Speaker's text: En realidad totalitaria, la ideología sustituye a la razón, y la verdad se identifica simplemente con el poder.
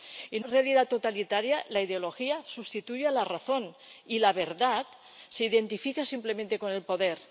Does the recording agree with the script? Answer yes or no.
yes